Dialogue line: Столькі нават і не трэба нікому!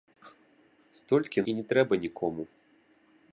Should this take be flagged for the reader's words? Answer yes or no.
yes